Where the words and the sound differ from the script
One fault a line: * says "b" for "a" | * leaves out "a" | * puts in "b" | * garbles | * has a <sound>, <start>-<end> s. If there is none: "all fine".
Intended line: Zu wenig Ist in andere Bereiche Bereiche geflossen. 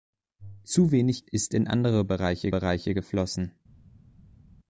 all fine